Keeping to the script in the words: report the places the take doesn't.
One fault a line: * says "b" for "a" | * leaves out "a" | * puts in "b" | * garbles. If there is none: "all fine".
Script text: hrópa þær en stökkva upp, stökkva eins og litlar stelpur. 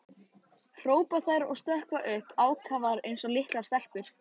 * says "og" for "en"
* says "ákafar" for "stökkva"